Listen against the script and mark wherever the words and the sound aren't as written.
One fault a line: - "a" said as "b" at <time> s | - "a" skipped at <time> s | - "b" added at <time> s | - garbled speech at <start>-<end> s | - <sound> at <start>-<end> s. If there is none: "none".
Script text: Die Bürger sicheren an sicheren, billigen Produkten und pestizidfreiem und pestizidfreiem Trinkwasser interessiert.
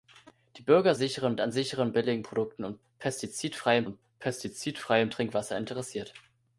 none